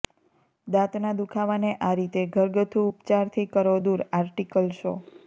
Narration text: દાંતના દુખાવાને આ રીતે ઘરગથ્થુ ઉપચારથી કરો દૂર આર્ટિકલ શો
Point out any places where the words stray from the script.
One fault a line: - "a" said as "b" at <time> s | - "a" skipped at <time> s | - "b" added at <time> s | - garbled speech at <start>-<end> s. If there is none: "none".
none